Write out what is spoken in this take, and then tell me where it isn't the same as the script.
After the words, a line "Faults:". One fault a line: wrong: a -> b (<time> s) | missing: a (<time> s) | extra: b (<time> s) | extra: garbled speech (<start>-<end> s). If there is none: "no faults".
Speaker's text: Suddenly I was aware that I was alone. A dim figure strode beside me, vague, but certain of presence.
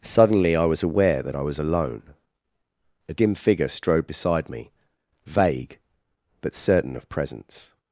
Suddenly I was aware that I was alone. A dim figure strode beside me, vague, but certain of presence.
Faults:
no faults